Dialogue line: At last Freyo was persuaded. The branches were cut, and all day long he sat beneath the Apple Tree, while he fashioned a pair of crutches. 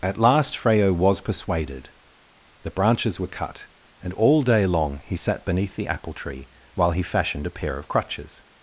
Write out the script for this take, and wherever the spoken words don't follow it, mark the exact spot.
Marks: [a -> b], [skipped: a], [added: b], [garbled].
At last Freyo was persuaded. The branches were cut, and all day long he sat beneath the Apple Tree, while he fashioned a pair of crutches.